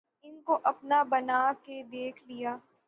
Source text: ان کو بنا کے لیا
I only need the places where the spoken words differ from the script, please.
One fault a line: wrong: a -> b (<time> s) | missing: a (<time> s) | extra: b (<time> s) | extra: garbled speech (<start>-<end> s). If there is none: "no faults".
extra: اپنا (0.6 s)
extra: دیکھ (1.9 s)